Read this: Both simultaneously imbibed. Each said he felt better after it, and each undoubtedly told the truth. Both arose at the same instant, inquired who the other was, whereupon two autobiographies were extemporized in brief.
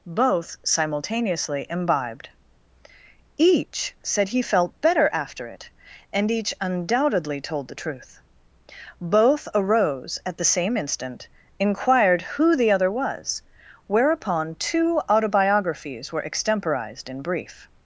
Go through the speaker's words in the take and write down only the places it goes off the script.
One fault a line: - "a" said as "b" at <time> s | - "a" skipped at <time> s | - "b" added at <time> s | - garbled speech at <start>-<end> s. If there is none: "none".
none